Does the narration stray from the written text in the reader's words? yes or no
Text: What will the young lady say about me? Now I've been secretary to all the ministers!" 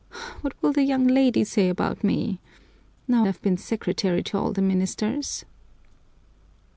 no